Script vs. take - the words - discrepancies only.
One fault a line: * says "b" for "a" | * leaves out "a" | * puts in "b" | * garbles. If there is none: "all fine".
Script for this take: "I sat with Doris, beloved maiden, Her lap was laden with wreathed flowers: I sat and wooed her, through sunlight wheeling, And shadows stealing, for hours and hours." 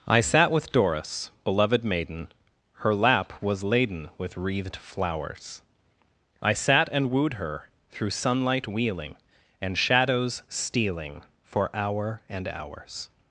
* says "hour" for "hours"